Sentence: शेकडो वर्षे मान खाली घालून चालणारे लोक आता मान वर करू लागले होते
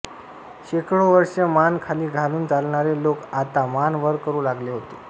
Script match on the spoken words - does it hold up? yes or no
yes